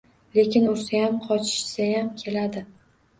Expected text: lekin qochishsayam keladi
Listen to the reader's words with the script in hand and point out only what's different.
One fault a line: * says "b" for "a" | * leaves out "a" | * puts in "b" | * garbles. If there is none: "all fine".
* puts in "ursayam"